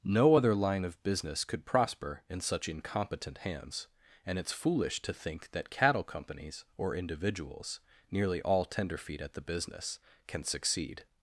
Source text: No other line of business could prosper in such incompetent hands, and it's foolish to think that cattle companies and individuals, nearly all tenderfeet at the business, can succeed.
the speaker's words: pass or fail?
fail